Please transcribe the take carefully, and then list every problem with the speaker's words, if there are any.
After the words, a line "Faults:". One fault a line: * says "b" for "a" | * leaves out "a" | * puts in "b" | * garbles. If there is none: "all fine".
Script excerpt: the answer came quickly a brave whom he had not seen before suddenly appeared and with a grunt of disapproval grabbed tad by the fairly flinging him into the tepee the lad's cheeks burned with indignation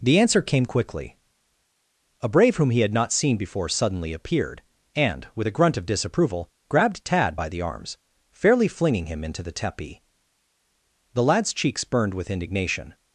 the answer came quickly a brave whom he had not seen before suddenly appeared and with a grunt of disapproval grabbed tad by the arms fairly flinging him into the tepee the lad's cheeks burned with indignation
Faults:
* puts in "arms"